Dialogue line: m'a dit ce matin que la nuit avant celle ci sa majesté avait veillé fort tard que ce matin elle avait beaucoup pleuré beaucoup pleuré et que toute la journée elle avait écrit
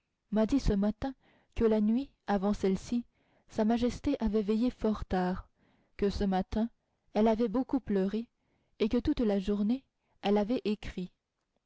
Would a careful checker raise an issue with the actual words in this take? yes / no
yes